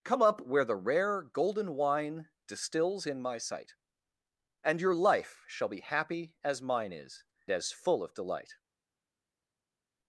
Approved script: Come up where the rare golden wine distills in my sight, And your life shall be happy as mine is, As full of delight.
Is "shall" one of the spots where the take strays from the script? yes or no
no